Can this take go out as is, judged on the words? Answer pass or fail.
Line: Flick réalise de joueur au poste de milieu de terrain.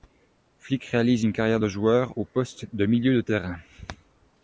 fail